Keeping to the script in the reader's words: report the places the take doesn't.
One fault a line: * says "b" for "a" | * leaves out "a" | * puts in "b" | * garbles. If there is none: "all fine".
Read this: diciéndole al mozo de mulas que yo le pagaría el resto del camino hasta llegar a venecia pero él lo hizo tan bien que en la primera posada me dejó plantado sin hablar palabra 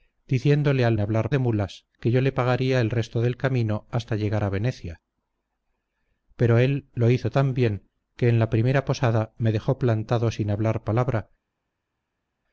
* says "hablar" for "mozo"